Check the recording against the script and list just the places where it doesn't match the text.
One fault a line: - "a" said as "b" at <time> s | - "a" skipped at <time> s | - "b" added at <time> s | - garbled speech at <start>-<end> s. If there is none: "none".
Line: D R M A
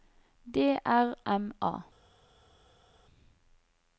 none